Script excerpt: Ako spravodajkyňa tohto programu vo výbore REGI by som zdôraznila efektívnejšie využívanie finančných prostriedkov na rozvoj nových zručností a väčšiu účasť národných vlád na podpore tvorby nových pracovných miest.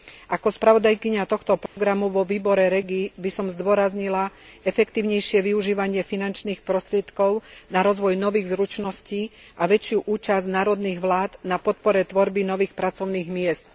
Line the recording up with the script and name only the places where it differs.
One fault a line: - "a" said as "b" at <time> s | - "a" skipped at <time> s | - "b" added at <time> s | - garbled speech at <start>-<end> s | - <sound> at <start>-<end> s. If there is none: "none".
- dropout at 1.7-1.8 s